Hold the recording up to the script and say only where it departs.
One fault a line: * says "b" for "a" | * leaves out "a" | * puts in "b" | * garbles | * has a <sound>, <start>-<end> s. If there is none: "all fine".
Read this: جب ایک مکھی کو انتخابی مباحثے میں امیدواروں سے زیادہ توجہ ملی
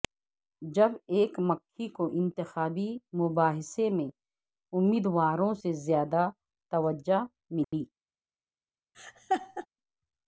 * has a dropout, 7.6-7.7 s
* has a laugh, 8.9-9.7 s